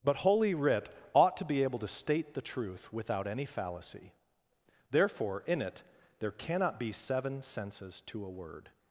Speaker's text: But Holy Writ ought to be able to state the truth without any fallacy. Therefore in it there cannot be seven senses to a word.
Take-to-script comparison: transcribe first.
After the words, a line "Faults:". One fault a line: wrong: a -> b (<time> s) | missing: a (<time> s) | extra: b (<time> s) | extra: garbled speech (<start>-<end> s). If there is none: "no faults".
But Holy Writ ought to be able to state the truth without any fallacy. Therefore in it there cannot be seven senses to a word.
Faults:
no faults